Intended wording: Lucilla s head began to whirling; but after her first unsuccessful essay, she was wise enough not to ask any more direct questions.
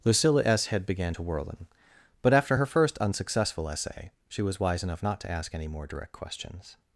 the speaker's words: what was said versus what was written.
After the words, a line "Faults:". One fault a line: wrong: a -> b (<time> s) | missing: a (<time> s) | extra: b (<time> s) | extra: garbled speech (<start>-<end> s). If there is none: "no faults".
Lucilla s head began to whirling; but after her first unsuccessful essay, she was wise enough not to ask any more direct questions.
Faults:
no faults